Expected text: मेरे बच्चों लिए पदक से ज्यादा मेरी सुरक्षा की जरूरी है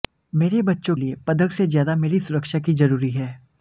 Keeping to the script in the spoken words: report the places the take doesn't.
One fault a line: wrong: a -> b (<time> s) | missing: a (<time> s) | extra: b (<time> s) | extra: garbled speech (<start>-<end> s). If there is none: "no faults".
no faults